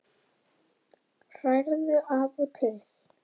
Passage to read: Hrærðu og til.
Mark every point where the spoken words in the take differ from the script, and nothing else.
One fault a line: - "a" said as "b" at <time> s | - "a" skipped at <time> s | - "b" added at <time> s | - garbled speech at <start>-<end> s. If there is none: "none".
- "af" added at 2.2 s